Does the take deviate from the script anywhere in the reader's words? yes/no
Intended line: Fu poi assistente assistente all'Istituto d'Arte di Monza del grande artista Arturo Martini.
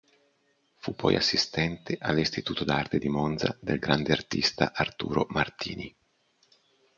yes